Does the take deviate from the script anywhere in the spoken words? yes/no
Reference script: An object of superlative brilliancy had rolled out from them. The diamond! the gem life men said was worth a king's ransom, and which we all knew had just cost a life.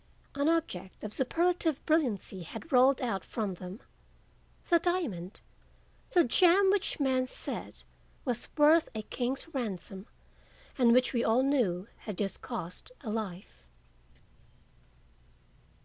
yes